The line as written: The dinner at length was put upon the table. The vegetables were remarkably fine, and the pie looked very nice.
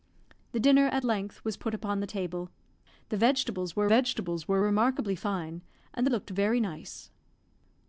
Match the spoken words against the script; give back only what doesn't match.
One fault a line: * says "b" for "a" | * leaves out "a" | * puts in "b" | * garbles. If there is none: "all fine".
* puts in "vegetables were"
* leaves out "pie"